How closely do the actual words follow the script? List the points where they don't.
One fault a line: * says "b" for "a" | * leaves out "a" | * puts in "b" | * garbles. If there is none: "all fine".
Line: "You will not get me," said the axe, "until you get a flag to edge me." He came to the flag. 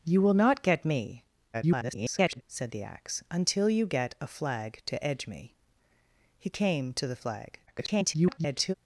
* garbles
* garbles